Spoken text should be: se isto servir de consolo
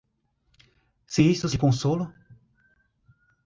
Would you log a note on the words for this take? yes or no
yes